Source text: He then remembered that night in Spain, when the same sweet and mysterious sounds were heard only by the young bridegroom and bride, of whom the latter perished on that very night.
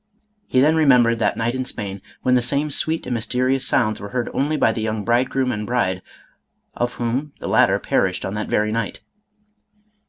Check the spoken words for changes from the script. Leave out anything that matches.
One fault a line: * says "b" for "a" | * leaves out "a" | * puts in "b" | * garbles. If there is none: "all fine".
all fine